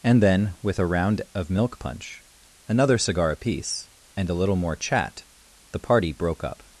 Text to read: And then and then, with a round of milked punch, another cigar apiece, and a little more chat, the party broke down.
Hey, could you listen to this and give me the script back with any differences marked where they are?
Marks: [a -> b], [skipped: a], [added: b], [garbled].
And then [skipped: and then,] with a round of [milked -> milk] punch, another cigar apiece, and a little more chat, the party broke [down. -> up]